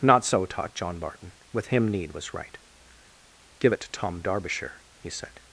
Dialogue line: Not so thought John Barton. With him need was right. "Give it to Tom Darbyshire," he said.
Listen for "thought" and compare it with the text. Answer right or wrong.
wrong